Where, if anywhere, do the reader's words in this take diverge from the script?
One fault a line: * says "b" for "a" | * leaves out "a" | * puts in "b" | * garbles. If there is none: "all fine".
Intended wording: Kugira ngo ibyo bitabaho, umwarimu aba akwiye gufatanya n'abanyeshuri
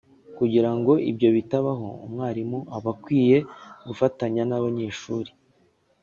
all fine